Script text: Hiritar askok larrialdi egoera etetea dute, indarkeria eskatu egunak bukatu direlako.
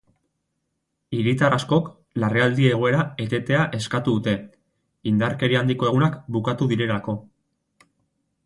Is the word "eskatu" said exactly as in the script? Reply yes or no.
no